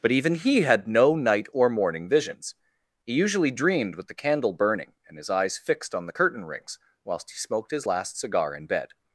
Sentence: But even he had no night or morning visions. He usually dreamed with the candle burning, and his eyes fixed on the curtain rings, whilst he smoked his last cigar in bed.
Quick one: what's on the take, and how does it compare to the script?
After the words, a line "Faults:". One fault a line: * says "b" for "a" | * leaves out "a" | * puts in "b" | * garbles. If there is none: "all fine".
But even he had no night or morning visions. He usually dreamed with the candle burning, and his eyes fixed on the curtain rings, whilst he smoked his last cigar in bed.
Faults:
all fine